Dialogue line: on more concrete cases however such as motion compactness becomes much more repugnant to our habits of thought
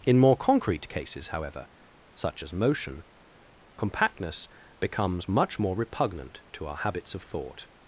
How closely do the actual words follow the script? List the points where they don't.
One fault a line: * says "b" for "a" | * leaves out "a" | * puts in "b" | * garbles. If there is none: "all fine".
* says "in" for "on"